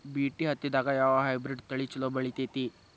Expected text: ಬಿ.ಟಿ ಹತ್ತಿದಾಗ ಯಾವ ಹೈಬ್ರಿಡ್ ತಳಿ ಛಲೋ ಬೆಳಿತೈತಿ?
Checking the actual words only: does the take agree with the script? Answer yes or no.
yes